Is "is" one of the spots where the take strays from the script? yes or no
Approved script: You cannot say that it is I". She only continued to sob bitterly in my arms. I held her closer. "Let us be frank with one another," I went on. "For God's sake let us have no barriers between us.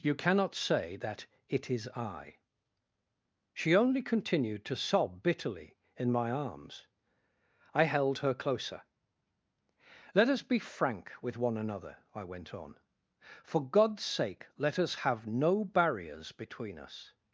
no